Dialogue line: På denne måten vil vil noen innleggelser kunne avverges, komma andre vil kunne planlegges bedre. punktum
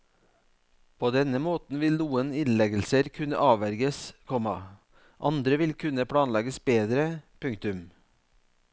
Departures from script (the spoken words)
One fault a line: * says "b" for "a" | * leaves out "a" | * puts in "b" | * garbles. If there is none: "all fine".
* leaves out "vil"